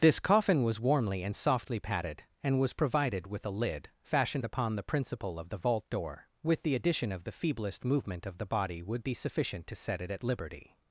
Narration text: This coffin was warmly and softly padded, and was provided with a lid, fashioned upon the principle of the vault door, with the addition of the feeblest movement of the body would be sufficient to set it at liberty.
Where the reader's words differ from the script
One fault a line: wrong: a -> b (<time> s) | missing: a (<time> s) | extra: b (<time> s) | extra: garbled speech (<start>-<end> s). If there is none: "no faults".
no faults